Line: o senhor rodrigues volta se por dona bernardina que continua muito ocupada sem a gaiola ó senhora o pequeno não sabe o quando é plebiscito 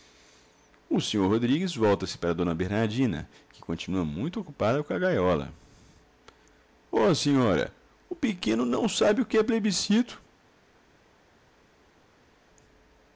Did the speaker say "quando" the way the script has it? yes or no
no